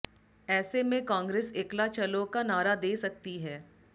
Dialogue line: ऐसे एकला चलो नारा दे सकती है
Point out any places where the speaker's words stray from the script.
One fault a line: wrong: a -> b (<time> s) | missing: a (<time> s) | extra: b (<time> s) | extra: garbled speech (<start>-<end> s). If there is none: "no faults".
extra: में कांग्रेस (0.8 s)
extra: का (2.3 s)